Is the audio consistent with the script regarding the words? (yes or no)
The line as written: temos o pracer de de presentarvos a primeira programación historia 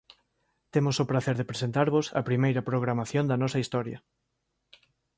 no